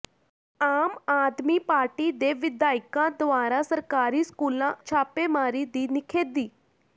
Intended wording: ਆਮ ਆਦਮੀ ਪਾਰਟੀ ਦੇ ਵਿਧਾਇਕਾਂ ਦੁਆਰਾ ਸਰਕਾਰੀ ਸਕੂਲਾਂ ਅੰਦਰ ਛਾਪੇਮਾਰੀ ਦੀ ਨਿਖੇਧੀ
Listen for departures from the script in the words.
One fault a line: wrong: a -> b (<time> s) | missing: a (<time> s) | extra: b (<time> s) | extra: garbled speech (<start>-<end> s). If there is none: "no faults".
missing: ਅੰਦਰ (4.7 s)